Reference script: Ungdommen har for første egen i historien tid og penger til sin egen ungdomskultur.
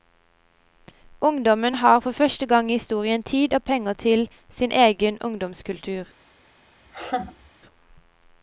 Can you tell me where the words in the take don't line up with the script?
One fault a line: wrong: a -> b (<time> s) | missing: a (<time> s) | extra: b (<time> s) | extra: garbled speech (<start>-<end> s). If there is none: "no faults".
wrong: egen -> gang (2.5 s)